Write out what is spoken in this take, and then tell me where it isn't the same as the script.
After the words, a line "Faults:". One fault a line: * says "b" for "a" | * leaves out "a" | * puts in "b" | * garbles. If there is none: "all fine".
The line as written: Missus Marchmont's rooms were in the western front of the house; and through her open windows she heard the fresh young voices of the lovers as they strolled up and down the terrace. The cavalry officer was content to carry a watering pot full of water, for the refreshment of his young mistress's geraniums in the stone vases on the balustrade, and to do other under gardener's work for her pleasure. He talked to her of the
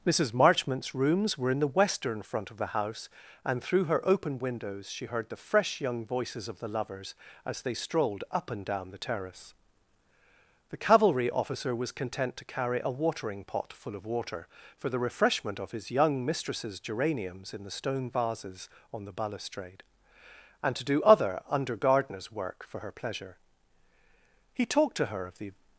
Missus Marchmont's rooms were in the western front of the house; and through her open windows she heard the fresh young voices of the lovers as they strolled up and down the terrace. The cavalry officer was content to carry a watering pot full of water, for the refreshment of his young mistress's geraniums in the stone vases on the balustrade, and to do other under gardener's work for her pleasure. He talked to her of the
Faults:
all fine